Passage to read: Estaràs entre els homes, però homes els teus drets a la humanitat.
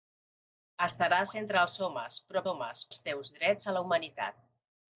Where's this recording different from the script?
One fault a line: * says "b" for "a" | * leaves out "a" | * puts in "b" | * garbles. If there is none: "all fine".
all fine